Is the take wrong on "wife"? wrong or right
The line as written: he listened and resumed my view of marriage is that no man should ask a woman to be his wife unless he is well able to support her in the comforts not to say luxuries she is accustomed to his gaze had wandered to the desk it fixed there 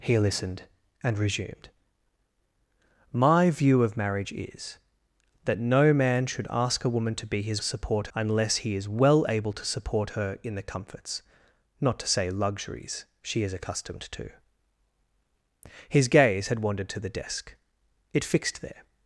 wrong